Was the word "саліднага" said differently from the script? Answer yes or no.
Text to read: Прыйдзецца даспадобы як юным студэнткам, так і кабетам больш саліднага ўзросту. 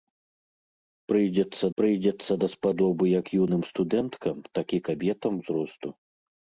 yes